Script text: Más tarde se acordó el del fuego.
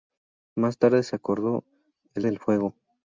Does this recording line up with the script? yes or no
yes